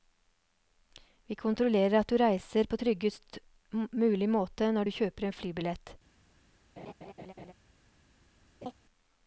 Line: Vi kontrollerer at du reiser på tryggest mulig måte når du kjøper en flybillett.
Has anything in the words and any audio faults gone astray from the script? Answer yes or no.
yes